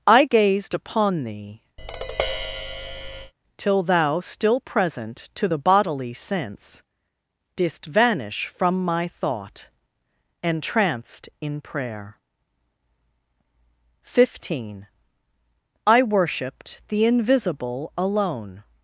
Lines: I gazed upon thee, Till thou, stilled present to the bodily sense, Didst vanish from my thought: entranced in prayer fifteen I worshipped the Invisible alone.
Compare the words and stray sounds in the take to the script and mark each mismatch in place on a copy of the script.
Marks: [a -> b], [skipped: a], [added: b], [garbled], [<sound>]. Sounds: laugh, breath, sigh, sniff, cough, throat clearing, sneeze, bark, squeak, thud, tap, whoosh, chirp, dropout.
I gazed upon thee, [tap] Till thou, [stilled -> still] present to the bodily sense, Didst vanish from my thought: entranced in prayer fifteen I worshipped the Invisible alone.